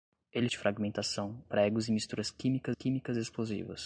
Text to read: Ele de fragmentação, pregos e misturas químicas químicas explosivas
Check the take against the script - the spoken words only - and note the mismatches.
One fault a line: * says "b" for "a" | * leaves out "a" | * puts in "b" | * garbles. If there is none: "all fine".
all fine